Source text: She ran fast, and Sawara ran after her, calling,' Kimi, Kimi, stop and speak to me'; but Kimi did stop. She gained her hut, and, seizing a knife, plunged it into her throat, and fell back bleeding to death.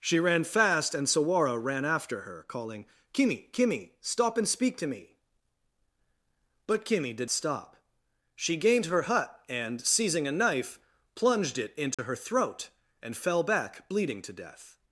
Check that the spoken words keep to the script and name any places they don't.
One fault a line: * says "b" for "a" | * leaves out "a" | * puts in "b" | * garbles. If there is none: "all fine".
all fine